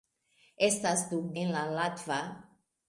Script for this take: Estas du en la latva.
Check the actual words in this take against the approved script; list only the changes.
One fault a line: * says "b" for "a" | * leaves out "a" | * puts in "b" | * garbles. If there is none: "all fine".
all fine